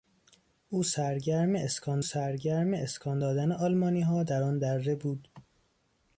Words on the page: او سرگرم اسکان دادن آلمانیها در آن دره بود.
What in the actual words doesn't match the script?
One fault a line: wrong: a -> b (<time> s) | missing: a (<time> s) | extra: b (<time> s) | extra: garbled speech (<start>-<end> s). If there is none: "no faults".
extra: سرگرم اسکان (2.0 s)